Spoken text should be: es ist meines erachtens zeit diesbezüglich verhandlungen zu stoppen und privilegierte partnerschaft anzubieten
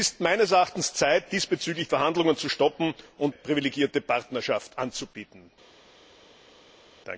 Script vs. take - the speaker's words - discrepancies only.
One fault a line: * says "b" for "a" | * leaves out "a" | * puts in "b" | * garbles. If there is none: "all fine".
all fine